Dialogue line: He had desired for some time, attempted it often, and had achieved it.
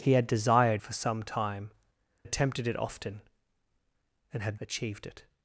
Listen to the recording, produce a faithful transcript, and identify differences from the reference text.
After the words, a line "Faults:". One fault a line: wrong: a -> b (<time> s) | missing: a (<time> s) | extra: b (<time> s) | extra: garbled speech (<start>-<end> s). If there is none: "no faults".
He had desired for some time, attempted it often, and had achieved it.
Faults:
no faults